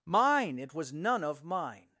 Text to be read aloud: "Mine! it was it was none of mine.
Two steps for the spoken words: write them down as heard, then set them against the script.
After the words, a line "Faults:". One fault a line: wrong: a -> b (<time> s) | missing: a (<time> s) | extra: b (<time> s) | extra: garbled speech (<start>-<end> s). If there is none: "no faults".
"Mine! it was none of mine.
Faults:
missing: it was (0.9 s)